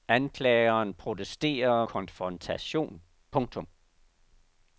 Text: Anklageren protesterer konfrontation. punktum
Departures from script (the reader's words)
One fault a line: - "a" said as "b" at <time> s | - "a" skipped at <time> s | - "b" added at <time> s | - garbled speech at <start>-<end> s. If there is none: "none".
none